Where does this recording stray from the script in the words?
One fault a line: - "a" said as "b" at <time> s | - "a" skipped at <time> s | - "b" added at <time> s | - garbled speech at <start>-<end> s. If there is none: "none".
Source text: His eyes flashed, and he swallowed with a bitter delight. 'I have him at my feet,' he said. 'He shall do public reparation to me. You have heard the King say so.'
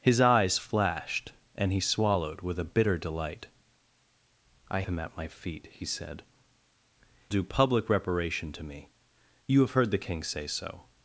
- "have" skipped at 4.8 s
- "He shall" skipped at 6.2 s